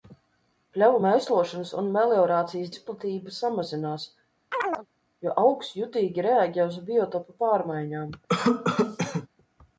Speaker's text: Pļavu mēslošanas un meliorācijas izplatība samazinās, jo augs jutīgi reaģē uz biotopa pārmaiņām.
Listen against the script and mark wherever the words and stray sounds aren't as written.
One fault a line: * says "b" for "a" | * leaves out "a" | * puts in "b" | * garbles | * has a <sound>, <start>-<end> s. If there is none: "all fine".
* has a chirp, 4.5-4.9 s
* has a cough, 8.3-9.3 s